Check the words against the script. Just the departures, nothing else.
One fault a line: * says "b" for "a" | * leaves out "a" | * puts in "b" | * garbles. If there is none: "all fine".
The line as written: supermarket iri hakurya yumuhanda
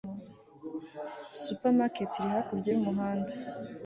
all fine